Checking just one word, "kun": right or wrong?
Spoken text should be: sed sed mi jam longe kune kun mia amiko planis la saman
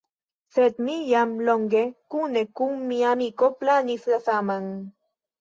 right